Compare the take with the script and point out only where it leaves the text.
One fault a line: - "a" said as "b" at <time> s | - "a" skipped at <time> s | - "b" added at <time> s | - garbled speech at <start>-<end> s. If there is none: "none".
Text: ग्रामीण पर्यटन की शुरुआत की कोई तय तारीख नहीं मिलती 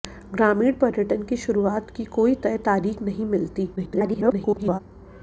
- garbled speech at 3.8-4.8 s